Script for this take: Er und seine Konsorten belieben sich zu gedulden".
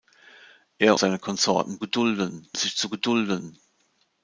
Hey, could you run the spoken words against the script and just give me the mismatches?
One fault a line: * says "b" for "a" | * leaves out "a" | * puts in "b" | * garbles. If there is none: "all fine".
* leaves out "und"
* says "gedulden" for "belieben"